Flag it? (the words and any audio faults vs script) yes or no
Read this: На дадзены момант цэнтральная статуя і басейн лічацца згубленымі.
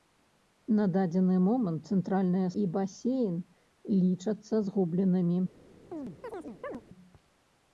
yes